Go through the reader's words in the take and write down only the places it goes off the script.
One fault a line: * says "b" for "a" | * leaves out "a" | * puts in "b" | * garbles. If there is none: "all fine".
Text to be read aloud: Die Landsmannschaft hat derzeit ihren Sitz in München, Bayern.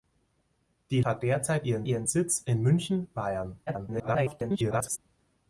* leaves out "Landsmannschaft"
* puts in "ihren"
* garbles